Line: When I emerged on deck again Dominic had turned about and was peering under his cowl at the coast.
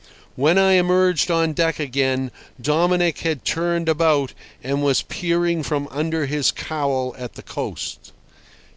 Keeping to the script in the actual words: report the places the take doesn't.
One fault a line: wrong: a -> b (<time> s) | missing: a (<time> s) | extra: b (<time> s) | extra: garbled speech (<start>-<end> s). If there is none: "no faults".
extra: from (5.6 s)